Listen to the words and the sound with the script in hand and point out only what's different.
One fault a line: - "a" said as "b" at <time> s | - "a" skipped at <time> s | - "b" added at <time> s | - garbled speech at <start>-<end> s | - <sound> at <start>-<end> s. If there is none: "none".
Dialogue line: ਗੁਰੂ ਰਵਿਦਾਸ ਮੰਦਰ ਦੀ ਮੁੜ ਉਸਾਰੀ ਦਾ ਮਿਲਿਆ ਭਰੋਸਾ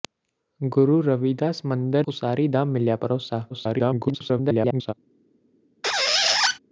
- "ਦੀ ਮੁੜ" skipped at 2.1 s
- garbled speech at 3.5-4.9 s
- squeak at 5.8-6.6 s